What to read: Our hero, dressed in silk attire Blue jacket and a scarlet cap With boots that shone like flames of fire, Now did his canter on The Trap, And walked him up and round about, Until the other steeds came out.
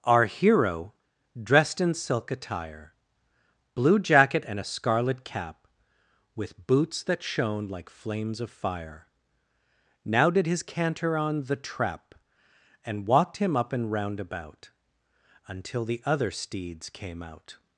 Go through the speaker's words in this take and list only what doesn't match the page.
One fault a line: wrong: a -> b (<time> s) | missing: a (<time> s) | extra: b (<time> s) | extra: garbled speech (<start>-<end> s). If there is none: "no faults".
no faults